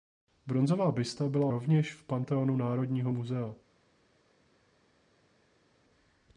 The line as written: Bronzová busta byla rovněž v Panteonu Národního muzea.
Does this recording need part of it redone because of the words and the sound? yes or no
no